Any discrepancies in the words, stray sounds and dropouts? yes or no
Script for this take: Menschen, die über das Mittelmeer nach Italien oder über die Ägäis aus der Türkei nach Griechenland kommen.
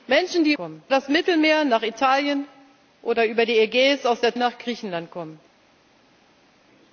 yes